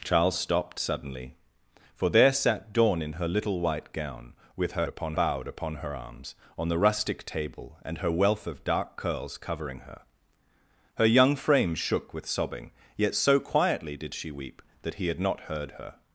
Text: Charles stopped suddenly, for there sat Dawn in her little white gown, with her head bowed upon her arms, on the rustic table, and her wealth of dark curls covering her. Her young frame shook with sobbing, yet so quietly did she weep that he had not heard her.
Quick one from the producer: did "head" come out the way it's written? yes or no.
no